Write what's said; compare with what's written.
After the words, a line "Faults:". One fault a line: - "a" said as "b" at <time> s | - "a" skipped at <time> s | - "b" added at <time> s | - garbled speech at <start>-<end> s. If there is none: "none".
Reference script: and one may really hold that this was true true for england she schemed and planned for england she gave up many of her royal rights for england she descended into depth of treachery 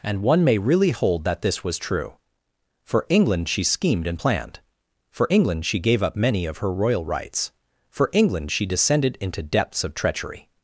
and one may really hold that this was true for england she schemed and planned for england she gave up many of her royal rights for england she descended into depths of treachery
Faults:
- "true" skipped at 2.1 s
- "depth" said as "depths" at 9.4 s